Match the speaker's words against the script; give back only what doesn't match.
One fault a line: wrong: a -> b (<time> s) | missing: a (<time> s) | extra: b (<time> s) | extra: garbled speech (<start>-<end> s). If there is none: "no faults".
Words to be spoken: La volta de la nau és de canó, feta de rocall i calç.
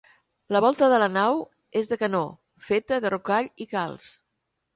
no faults